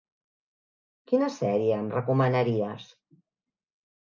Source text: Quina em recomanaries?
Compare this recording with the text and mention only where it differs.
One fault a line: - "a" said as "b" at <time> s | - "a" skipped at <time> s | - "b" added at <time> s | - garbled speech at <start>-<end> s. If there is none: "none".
- "sèrie" added at 1.4 s